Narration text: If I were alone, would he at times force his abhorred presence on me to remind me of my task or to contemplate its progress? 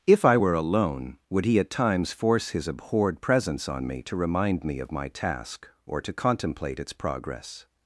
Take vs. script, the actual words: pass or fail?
pass